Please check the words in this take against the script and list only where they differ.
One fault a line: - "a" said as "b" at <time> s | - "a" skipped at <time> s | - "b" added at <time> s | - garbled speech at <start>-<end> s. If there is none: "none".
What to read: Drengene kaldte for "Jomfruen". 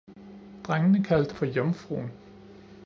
none